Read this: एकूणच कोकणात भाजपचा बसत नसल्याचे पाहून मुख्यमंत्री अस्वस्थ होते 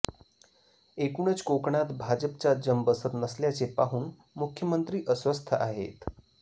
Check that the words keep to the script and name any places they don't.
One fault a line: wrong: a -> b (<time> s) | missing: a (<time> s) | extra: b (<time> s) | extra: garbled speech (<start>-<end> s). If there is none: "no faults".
extra: जम (2.6 s)
wrong: होते -> आहेत (5.5 s)